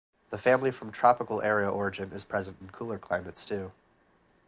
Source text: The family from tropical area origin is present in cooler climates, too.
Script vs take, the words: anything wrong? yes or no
no